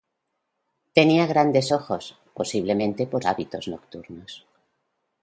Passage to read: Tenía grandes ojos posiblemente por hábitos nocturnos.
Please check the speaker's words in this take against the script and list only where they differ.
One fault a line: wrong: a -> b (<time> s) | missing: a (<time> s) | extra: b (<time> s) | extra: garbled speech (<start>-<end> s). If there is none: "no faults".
no faults